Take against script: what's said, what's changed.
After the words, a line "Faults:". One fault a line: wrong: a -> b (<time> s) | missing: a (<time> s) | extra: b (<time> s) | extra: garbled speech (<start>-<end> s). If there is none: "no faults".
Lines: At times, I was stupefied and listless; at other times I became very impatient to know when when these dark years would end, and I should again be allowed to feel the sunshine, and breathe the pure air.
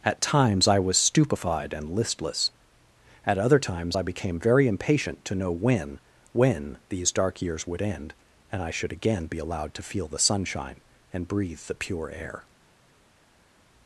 At times, I was stupefied and listless; at other times I became very impatient to know when when these dark years would end, and I should again be allowed to feel the sunshine, and breathe the pure air.
Faults:
no faults